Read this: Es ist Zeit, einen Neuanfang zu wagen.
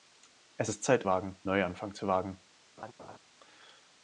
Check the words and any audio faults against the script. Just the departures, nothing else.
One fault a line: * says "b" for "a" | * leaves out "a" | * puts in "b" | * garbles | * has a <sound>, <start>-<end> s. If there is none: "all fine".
* says "wagen" for "einen"
* has a laugh, 2.8-3.2 s